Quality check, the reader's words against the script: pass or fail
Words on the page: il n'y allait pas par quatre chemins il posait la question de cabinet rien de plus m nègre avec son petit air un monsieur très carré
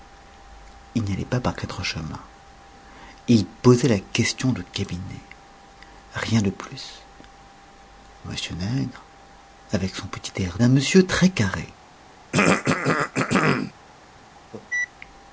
pass